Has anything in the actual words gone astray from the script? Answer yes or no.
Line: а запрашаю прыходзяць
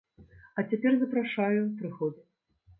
yes